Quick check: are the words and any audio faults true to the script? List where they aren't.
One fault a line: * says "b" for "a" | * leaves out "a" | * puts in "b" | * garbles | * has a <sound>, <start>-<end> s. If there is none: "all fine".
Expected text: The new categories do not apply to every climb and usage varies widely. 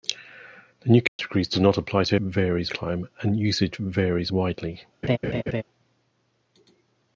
* has a dropout, 1.1-1.2 s
* says "varies" for "every"
* has a laugh, 5.0-5.6 s